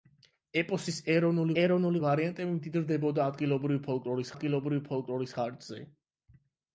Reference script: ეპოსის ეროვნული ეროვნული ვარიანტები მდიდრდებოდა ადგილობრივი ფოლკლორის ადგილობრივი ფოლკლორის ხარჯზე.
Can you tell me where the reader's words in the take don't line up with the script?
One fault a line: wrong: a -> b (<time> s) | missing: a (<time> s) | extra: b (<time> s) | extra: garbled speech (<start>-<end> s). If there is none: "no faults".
no faults